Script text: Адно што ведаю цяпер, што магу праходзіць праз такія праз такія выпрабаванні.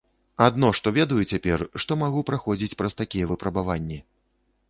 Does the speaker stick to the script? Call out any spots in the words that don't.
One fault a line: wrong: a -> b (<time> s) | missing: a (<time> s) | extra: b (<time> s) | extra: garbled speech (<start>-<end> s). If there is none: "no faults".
missing: праз такія (3.3 s)